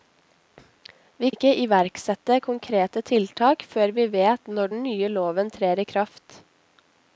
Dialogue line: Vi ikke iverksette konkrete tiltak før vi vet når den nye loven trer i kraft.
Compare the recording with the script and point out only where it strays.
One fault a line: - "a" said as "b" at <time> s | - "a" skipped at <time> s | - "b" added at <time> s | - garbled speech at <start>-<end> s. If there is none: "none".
none